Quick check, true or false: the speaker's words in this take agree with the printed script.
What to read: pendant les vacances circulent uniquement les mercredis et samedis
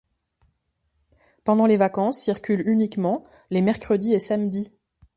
true